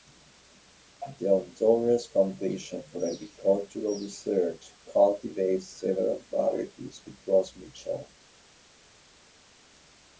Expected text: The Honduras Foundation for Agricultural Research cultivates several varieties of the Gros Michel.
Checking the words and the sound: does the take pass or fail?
fail